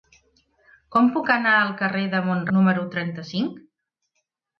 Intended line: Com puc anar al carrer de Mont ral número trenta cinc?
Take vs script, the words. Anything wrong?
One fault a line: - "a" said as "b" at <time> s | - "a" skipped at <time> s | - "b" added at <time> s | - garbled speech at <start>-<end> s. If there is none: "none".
- "ral" skipped at 2.4 s